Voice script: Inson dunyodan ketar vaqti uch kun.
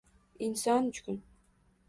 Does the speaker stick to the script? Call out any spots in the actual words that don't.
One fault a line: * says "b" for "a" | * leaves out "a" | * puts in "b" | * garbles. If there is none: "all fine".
* leaves out "dunyodan ketar vaqti"